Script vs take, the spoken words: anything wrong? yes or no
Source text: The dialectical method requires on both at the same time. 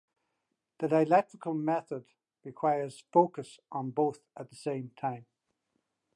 yes